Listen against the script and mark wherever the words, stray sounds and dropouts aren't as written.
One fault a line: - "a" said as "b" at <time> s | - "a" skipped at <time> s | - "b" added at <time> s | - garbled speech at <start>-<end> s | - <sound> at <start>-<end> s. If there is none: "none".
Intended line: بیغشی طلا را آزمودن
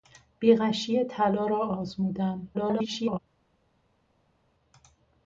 - garbled speech at 2.5-3.2 s